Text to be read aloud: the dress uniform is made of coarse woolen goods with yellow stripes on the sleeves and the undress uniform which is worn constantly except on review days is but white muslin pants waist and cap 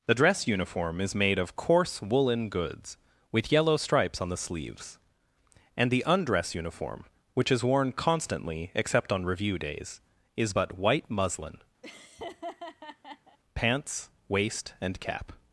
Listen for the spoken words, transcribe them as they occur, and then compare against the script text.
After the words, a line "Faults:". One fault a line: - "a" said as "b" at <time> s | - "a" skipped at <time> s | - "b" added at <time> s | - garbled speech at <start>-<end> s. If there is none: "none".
the dress uniform is made of coarse woolen goods with yellow stripes on the sleeves and the undress uniform which is worn constantly except on review days is but white muslin pants waist and cap
Faults:
none